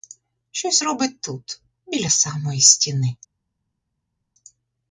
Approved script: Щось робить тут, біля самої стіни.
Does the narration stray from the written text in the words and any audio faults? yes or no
no